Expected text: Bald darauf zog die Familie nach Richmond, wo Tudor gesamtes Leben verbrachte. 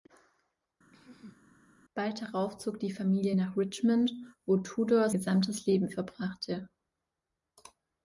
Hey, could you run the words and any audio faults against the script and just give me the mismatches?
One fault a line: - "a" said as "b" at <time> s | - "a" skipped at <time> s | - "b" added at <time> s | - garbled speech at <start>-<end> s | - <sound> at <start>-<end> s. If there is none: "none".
- throat clearing at 0.9-1.6 s